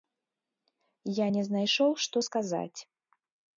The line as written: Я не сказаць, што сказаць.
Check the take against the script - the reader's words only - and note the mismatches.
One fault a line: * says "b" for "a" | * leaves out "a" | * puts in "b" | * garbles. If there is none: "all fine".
* says "знайшоў" for "сказаць"